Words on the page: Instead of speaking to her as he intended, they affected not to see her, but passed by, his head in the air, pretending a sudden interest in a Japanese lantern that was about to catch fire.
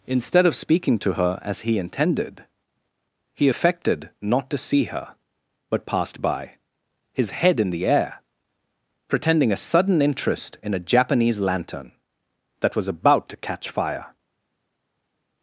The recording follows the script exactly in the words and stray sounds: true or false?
false